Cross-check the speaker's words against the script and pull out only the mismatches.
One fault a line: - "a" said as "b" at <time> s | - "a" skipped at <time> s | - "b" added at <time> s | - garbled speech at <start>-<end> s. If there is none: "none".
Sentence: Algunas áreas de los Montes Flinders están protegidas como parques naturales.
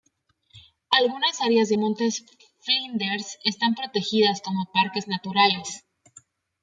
- "los" skipped at 1.8 s